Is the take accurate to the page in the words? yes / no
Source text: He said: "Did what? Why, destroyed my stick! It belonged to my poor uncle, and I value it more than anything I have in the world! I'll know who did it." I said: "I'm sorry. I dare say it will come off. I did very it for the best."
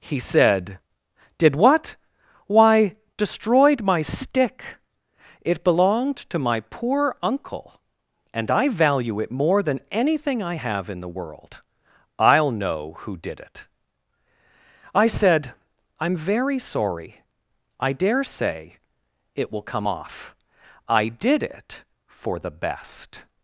no